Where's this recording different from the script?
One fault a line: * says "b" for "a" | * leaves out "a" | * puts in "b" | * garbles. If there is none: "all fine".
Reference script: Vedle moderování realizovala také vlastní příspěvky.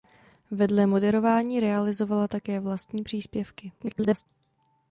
* garbles